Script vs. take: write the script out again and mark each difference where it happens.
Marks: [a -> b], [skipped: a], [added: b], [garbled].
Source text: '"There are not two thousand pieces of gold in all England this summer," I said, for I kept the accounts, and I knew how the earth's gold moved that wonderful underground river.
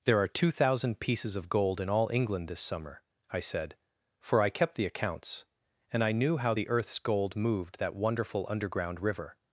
'"There are [skipped: not] two thousand pieces of gold in all England this summer," I said, for I kept the accounts, and I knew how the earth's gold moved that wonderful underground river.